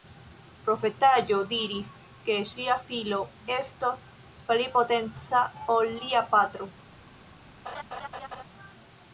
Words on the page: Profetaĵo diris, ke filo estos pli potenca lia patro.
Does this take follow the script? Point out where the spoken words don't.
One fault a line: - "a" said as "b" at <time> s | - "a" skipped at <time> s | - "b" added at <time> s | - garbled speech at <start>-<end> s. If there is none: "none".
- "ŝia" added at 2.5 s
- "ol" added at 5.8 s